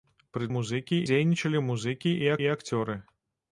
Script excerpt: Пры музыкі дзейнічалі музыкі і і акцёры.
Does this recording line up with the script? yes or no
yes